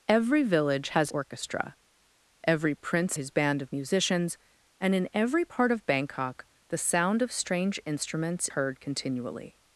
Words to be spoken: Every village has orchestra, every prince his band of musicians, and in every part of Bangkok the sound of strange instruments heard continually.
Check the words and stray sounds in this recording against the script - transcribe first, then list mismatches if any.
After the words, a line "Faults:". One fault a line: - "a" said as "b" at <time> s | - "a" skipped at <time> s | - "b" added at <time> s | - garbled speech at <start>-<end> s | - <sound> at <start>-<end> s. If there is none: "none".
Every village has orchestra, every prince his band of musicians, and in every part of Bangkok the sound of strange instruments heard continually.
Faults:
none